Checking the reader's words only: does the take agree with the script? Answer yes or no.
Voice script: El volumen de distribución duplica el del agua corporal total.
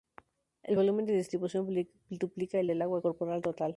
yes